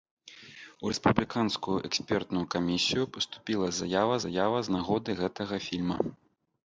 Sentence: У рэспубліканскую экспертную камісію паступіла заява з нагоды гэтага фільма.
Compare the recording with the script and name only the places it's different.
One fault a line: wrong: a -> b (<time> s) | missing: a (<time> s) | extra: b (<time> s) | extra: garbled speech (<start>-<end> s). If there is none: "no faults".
extra: заява (4.3 s)